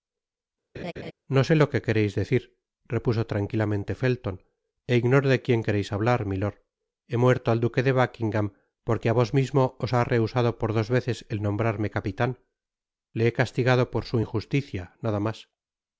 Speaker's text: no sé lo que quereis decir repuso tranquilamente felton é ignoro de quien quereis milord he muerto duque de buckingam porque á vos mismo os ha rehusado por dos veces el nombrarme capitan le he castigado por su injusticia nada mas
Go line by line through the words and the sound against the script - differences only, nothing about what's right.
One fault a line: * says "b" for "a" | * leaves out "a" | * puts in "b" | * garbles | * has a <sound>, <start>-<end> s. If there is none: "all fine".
* has a laugh, 0.7-1.1 s
* puts in "hablar"
* puts in "al"